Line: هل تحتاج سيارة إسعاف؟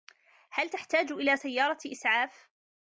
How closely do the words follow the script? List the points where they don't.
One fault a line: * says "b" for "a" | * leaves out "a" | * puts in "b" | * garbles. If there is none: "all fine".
* puts in "إلى"